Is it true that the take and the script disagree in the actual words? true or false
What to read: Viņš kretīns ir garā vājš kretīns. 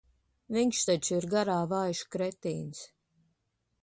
true